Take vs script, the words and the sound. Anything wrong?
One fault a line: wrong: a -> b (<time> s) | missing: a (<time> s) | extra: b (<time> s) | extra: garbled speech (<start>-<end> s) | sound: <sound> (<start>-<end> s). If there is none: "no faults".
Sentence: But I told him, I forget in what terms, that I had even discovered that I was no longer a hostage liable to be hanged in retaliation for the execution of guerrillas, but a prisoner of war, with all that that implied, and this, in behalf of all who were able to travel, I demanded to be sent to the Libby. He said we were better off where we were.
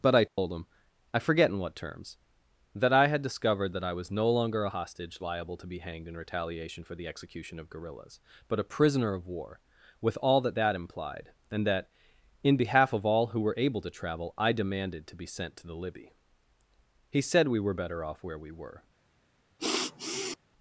sound: dropout (0.3-0.4 s)
missing: even (3.2 s)
wrong: this -> that (11.6 s)
sound: sniff (19.6-20.4 s)